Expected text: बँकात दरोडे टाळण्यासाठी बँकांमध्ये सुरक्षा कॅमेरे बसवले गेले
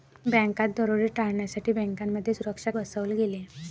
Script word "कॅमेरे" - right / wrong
wrong